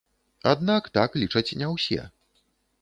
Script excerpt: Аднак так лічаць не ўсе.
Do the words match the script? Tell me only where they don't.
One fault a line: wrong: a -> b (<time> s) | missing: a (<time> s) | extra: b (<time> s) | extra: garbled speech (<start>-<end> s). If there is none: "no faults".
no faults